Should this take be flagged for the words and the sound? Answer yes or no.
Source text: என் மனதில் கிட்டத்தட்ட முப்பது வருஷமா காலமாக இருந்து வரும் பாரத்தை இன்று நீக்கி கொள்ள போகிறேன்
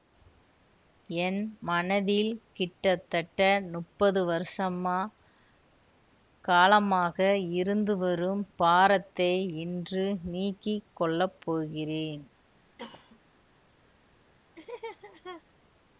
yes